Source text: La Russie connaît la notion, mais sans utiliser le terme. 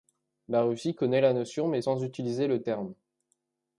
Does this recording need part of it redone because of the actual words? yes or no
no